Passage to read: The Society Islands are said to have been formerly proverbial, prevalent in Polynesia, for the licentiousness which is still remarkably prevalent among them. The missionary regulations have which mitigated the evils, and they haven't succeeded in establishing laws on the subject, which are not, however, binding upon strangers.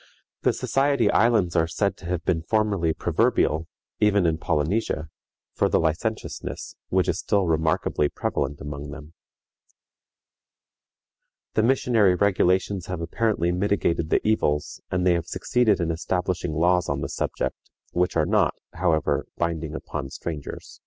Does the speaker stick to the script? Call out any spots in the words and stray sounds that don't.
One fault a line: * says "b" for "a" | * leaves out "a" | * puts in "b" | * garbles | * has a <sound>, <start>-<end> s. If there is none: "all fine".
* says "even" for "prevalent"
* says "apparently" for "which"
* says "have" for "haven't"